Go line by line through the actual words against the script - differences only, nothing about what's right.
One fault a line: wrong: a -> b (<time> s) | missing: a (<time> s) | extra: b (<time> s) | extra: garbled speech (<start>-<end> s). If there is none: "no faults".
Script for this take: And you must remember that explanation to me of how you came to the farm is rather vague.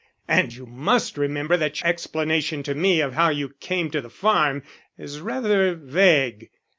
no faults